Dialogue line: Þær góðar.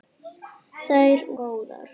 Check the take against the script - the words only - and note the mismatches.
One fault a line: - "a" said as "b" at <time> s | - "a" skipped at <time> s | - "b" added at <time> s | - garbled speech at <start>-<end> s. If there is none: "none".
none